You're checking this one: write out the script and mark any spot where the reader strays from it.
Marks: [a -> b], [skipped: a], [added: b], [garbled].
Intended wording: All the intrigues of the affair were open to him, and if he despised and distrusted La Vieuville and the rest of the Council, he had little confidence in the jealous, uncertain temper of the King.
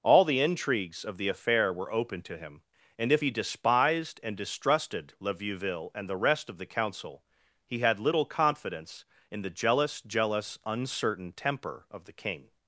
All the intrigues of the affair were open to him, and if he despised and distrusted La Vieuville and the rest of the Council, he had little confidence in the jealous, [added: jealous] uncertain temper of the King.